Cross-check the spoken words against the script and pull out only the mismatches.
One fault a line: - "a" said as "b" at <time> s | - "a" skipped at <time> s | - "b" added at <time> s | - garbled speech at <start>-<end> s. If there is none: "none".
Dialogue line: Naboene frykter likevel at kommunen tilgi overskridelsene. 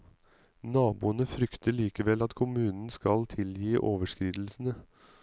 - "skal" added at 2.9 s